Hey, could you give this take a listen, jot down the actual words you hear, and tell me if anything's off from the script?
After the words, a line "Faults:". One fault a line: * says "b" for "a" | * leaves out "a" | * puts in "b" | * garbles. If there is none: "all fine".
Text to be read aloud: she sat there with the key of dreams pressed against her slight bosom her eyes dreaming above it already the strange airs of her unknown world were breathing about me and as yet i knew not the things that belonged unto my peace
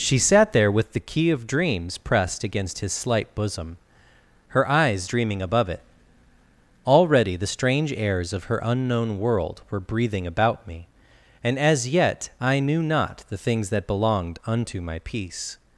she sat there with the key of dreams pressed against his slight bosom her eyes dreaming above it already the strange airs of her unknown world were breathing about me and as yet i knew not the things that belonged unto my peace
Faults:
* says "his" for "her"